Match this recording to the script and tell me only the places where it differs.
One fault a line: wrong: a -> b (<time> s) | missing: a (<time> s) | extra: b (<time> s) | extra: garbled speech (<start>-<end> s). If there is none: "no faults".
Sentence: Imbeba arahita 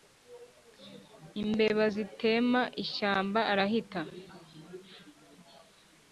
extra: zitema ishyamba (1.9 s)